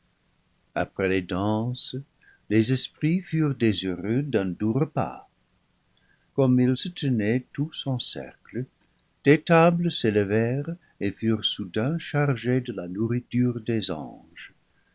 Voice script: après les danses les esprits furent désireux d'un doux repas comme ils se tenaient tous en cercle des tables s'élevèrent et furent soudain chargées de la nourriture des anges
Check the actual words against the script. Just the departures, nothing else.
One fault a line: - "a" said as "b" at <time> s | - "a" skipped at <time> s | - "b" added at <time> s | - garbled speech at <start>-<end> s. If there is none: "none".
none